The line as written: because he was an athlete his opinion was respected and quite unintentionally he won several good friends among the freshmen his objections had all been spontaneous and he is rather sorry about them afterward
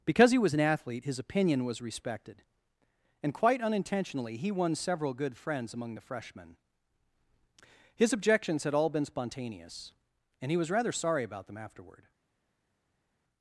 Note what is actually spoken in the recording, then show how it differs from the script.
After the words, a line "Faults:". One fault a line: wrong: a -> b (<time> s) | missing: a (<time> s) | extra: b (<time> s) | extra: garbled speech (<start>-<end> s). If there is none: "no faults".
because he was an athlete his opinion was respected and quite unintentionally he won several good friends among the freshmen his objections had all been spontaneous and he was rather sorry about them afterward
Faults:
wrong: is -> was (10.6 s)